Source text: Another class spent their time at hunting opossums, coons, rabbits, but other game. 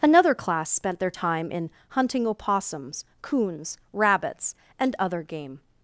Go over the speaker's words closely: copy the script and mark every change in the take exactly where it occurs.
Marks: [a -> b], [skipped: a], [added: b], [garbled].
Another class spent their time [at -> in] hunting opossums, coons, rabbits, [but -> and] other game.